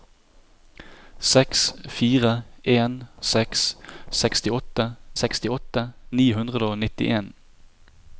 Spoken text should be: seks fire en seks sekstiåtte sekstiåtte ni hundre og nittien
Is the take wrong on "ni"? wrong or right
right